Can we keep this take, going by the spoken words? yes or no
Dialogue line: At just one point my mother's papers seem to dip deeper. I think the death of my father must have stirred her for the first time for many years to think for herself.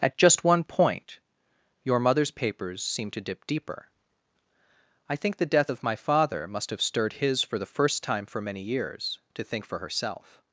no